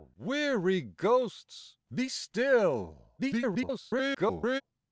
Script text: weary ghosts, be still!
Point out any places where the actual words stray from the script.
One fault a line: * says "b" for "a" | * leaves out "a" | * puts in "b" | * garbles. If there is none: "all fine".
* garbles